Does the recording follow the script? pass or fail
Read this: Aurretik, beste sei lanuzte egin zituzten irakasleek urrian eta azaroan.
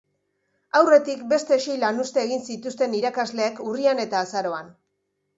pass